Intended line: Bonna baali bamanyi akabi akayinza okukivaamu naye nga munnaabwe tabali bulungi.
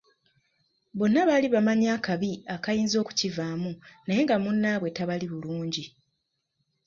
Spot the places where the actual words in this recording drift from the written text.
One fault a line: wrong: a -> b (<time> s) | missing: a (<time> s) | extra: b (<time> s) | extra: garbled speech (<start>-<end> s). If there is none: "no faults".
no faults